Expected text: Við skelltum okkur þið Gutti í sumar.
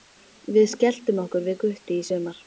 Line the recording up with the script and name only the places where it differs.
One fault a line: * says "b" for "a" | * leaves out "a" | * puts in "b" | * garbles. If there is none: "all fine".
* says "við" for "þið"